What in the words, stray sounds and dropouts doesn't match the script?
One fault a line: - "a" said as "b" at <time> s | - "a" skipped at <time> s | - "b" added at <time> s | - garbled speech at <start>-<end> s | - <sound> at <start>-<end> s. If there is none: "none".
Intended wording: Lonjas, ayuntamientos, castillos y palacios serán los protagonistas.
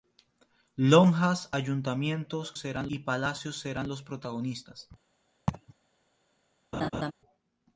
- "castillos" said as "serán" at 2.6 s
- laugh at 5.5-5.7 s
- laugh at 6.7-7.1 s